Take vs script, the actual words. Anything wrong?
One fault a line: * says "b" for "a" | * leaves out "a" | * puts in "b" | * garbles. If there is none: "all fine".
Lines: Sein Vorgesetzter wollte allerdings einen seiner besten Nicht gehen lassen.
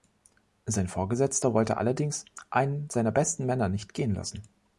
* puts in "Männer"